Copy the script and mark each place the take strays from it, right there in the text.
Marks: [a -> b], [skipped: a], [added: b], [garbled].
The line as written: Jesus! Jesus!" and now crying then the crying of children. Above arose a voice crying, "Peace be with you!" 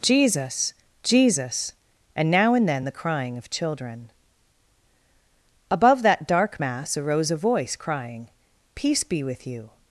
Jesus! Jesus!" and now [crying -> and] then the crying of children. Above [added: that dark mass] arose a voice crying, "Peace be with you!"